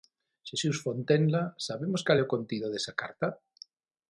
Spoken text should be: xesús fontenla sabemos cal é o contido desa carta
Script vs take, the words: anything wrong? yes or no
no